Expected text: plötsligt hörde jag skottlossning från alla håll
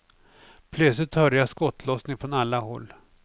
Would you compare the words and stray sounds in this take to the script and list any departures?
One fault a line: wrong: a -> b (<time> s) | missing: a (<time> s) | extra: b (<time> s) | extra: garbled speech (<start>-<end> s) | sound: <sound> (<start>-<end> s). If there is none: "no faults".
no faults